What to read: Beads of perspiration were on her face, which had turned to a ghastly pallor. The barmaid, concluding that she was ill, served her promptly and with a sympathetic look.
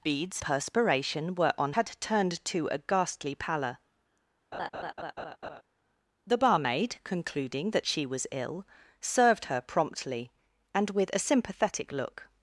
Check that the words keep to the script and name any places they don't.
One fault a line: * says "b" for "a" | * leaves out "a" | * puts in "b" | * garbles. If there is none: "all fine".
* leaves out "of"
* leaves out "her face which"